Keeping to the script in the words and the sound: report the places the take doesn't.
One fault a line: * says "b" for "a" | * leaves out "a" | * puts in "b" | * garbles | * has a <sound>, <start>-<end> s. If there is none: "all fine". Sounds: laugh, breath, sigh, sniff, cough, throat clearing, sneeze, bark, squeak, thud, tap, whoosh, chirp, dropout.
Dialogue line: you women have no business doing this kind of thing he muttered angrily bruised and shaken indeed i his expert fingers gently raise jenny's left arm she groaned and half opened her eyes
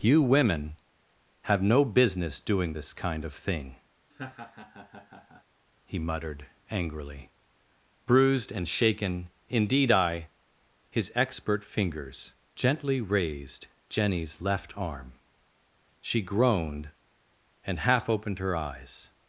* has a laugh, 4.1-5.4 s
* says "raised" for "raise"